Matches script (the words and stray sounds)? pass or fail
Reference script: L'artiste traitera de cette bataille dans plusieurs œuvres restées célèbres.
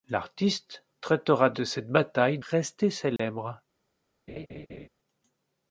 fail